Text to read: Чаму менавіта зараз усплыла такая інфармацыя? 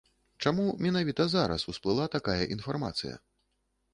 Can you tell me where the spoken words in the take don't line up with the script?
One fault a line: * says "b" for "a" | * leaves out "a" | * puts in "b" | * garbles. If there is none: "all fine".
all fine